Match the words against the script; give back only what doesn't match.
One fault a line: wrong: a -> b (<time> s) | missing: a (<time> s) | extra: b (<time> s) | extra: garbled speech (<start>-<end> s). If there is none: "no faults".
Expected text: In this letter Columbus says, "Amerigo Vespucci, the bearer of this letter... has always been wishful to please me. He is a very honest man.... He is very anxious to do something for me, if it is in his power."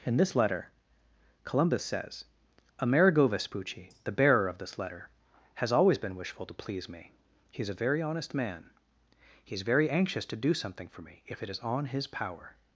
wrong: in -> on (11.6 s)